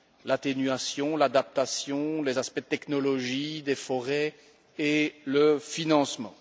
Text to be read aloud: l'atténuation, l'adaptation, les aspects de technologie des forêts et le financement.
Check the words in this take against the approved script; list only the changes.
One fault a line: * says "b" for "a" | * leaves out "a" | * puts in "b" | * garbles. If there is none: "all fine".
all fine